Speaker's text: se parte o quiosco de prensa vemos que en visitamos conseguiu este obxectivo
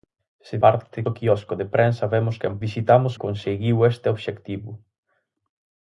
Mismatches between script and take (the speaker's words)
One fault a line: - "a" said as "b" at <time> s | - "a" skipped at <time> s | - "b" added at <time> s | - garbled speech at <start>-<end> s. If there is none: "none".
none